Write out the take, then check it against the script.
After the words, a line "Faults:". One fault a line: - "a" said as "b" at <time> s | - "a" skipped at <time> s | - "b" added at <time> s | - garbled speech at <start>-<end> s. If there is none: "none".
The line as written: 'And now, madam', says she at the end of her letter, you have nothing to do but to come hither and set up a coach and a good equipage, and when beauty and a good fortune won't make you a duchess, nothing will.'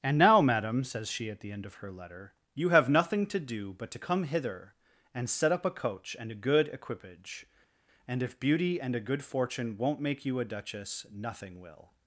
'And now, madam', says she at the end of her letter, you have nothing to do but to come hither and set up a coach and a good equipage, and if beauty and a good fortune won't make you a duchess, nothing will.'
Faults:
- "when" said as "if" at 8.2 s